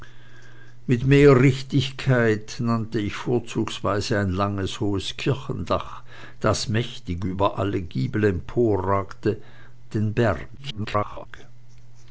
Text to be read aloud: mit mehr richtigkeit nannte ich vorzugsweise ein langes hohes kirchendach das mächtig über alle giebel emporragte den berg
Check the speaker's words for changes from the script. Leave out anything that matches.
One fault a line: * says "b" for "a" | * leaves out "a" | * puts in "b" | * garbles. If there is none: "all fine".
* garbles